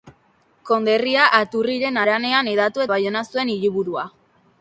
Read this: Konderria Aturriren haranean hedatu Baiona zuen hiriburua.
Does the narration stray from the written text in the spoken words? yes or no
no